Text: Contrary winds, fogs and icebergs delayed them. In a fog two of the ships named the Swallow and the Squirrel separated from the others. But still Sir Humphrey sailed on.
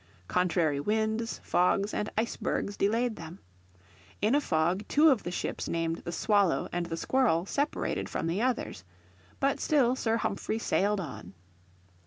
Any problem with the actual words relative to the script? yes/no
no